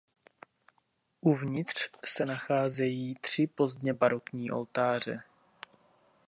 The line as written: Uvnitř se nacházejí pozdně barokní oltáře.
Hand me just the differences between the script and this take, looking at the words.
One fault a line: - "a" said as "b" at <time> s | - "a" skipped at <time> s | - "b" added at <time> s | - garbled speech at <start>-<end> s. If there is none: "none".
- "tři" added at 3.2 s